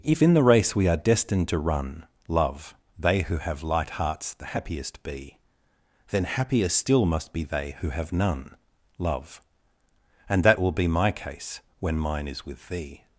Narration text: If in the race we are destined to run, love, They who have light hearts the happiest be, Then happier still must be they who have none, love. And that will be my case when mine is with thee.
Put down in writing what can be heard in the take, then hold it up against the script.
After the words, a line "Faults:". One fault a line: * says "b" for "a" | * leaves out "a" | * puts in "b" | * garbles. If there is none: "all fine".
If in the race we are destined to run, love, They who have light hearts the happiest be, Then happier still must be they who have none, love. And that will be my case when mine is with thee.
Faults:
all fine